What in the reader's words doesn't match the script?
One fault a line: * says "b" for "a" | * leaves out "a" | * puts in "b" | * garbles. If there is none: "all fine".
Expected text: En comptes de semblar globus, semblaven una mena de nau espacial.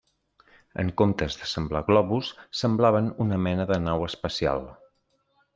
all fine